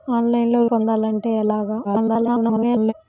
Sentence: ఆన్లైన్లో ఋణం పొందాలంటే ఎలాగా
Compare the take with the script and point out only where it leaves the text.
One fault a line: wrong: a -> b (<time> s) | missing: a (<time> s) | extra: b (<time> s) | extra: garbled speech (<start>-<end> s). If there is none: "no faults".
missing: ఋణం (0.6 s)
extra: garbled speech (1.8-2.9 s)